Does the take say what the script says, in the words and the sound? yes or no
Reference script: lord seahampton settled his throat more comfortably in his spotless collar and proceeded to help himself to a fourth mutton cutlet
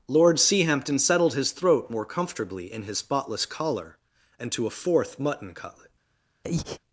no